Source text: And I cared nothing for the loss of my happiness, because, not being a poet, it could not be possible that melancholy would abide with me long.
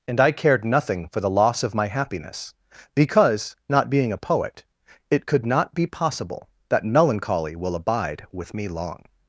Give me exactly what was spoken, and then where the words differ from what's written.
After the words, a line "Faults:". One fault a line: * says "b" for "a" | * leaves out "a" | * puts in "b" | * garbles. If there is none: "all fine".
And I cared nothing for the loss of my happiness, because, not being a poet, it could not be possible that melancholy will abide with me long.
Faults:
* says "will" for "would"